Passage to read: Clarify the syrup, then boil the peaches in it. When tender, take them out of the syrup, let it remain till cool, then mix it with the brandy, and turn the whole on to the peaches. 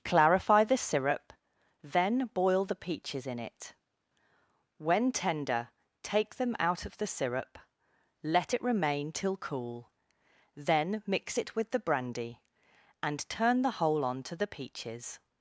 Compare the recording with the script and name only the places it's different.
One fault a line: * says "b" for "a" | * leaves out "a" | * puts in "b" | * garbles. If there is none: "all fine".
all fine